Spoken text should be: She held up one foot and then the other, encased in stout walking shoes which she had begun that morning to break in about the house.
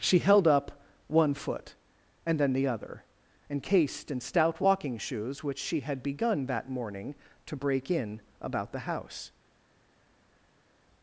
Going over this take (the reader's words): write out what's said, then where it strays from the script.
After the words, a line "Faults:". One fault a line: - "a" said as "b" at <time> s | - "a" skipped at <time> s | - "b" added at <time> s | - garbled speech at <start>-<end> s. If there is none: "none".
She held up one foot and then the other, encased in stout walking shoes which she had begun that morning to break in about the house.
Faults:
none